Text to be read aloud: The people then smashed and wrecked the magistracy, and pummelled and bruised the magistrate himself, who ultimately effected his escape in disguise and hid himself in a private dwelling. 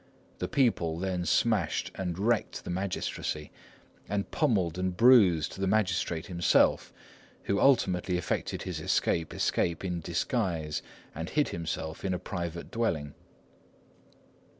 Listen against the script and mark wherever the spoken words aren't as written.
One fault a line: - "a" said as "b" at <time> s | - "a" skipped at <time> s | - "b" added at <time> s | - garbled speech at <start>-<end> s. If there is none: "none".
- "escape" added at 9.3 s